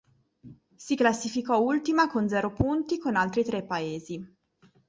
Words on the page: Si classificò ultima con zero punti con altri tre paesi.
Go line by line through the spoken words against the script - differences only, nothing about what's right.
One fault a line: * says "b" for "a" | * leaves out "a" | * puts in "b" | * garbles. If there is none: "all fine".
all fine